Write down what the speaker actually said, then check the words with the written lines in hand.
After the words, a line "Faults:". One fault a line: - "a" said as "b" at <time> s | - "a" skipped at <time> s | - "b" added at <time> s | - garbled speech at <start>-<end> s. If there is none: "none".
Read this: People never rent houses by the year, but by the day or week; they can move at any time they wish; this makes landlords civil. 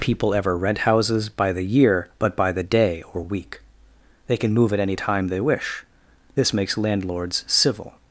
People ever rent houses by the year, but by the day or week; they can move at any time they wish; this makes landlords civil.
Faults:
- "never" said as "ever" at 0.3 s